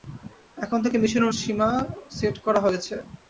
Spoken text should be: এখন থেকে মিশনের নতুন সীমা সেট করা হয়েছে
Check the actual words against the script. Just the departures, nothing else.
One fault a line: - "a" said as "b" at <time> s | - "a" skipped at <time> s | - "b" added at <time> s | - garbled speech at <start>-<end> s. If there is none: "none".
- "নতুন" skipped at 1.3 s